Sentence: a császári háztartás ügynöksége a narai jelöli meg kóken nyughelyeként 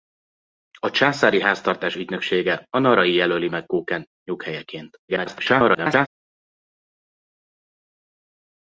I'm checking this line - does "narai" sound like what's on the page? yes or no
yes